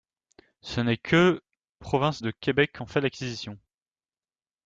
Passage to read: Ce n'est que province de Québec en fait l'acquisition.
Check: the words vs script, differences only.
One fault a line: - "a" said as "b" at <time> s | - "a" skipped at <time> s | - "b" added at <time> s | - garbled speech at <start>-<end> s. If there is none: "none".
none